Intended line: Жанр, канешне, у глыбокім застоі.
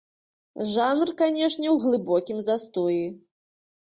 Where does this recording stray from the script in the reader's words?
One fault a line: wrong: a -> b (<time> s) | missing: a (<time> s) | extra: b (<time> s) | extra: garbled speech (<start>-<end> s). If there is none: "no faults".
no faults